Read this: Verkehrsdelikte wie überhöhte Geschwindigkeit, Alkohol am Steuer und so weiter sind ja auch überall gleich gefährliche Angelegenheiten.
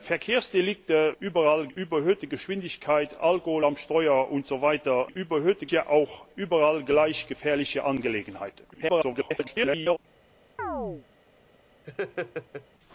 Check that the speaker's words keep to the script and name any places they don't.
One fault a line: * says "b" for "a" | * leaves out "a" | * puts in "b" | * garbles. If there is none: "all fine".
* says "überall" for "wie"
* says "überhöhte" for "sind"
* garbles